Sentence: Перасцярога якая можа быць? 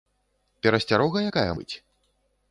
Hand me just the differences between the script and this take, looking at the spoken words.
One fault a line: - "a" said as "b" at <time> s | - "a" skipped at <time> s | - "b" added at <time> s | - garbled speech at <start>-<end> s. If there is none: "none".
- "можа" skipped at 1.5 s